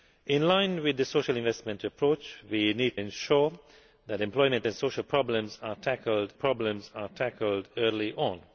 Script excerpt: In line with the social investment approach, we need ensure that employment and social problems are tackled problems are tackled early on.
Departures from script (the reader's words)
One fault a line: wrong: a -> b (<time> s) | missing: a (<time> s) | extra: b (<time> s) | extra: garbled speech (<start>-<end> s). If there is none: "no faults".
no faults